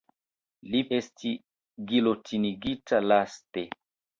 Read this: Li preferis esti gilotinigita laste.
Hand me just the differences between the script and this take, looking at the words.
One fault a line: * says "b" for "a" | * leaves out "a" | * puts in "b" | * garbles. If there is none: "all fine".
* leaves out "preferis"